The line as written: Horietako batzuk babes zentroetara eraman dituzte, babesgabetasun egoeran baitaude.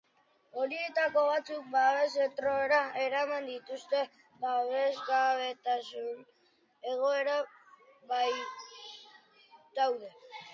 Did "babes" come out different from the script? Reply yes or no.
no